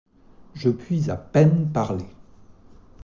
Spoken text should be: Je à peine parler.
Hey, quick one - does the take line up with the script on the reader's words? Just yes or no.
no